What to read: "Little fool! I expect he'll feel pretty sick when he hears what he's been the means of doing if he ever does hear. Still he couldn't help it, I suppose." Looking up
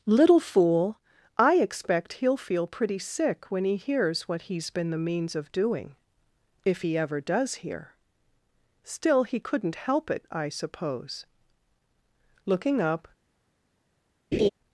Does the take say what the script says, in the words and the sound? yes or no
no